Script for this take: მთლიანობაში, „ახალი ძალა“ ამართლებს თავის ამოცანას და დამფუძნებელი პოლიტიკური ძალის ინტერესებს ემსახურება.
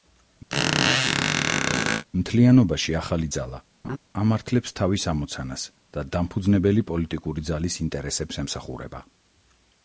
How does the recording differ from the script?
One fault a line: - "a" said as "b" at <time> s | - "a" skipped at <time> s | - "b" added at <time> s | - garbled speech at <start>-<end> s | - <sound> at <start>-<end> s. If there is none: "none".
- squeak at 0.5-2.0 s
- laugh at 3.8-4.0 s